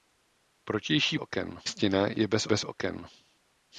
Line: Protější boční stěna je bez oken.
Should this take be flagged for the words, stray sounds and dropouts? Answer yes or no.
yes